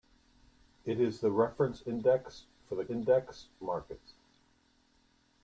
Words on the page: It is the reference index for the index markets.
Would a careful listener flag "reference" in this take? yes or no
no